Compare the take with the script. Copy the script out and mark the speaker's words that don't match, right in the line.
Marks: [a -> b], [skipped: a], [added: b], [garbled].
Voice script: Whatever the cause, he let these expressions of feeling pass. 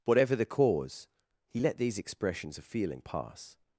Whatever the cause, he let these expressions of feeling pass.